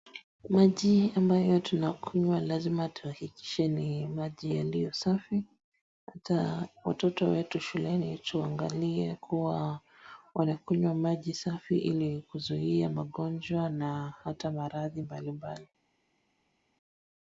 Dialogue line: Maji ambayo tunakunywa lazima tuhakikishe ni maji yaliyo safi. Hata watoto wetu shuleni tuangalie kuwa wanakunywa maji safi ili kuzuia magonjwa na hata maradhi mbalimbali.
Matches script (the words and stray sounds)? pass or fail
pass